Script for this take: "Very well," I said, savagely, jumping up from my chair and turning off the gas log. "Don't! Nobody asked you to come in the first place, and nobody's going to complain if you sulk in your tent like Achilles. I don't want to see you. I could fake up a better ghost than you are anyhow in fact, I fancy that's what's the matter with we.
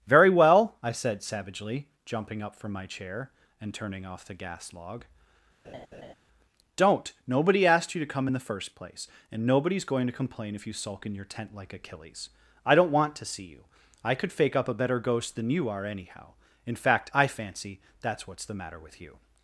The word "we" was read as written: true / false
false